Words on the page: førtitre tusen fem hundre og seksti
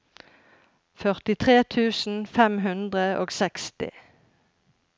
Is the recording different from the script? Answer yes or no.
no